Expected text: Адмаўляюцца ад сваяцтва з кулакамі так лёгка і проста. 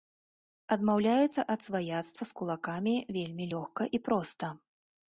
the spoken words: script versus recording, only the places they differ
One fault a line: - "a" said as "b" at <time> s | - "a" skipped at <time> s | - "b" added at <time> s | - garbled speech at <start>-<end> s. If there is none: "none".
- "так" said as "вельмі" at 3.2 s